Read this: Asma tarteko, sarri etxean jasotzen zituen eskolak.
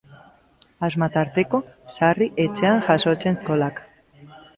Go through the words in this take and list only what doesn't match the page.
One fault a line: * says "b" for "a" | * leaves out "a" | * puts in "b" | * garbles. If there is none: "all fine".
* leaves out "zituen"